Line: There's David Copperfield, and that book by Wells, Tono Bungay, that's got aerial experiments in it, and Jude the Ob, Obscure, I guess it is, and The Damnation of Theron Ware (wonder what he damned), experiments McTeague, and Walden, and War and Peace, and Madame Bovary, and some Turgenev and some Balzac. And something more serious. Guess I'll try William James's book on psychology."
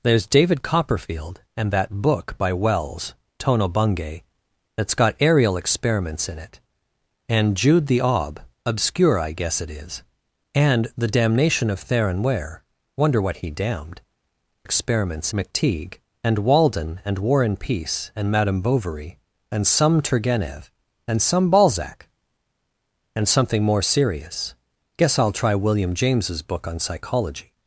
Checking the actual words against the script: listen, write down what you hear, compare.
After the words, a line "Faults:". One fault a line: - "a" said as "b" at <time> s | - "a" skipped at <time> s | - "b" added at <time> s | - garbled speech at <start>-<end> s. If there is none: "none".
There's David Copperfield, and that book by Wells, Tono Bungay, that's got aerial experiments in it, and Jude the Ob, Obscure, I guess it is, and The Damnation of Theron Ware (wonder what he damned), experiments McTeague, and Walden, and War and Peace, and Madame Bovary, and some Turgenev and some Balzac. And something more serious. Guess I'll try William James's book on psychology."
Faults:
none